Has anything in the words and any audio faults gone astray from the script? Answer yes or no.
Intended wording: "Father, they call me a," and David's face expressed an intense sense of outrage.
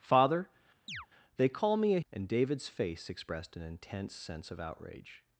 yes